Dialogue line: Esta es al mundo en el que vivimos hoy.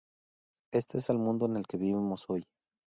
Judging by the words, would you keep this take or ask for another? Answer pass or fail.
pass